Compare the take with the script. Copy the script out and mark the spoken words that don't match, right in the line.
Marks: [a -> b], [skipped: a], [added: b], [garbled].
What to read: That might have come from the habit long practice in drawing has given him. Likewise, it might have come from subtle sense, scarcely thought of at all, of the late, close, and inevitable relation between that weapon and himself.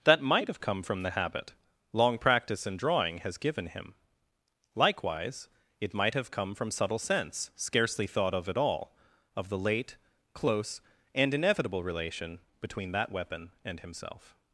That might have come from the habit long practice in drawing has given him. Likewise, it might have come from subtle sense, scarcely thought of at all, of the late, close, and inevitable relation between that weapon and himself.